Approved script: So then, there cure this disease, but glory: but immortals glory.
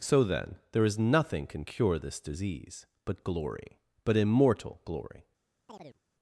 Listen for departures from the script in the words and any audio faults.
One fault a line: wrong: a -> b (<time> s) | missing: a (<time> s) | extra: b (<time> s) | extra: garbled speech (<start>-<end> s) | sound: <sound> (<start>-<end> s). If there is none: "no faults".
extra: is nothing can (0.8 s)
wrong: immortals -> immortal (4.2 s)
sound: chirp (5.7-6.0 s)